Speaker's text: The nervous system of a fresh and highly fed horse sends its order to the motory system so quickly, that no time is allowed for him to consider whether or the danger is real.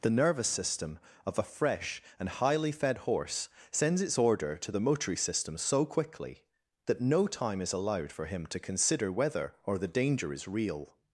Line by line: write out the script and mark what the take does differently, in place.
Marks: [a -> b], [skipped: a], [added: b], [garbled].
The nervous system of a fresh and highly fed horse sends its order to the motory system so quickly, that no time is allowed for him to consider whether or the danger is real.